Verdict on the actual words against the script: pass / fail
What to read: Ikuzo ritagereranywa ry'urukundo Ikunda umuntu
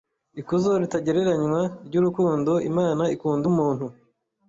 fail